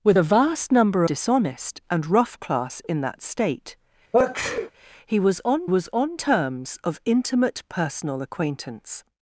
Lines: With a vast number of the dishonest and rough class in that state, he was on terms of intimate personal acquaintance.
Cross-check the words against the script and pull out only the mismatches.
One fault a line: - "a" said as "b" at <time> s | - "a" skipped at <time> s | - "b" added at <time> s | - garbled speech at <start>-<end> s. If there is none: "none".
- "of the" skipped at 1.0 s
- "was on" added at 5.6 s